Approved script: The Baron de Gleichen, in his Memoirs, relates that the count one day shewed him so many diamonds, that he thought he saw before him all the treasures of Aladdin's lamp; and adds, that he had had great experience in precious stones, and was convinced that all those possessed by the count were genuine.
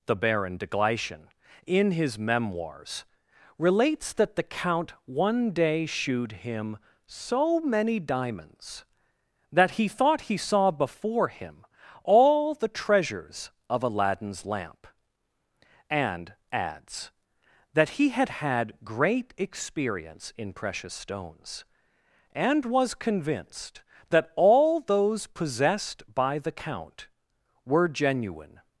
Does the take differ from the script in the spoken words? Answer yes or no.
no